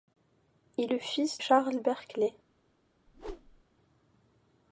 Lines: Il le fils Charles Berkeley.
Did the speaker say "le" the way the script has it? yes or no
yes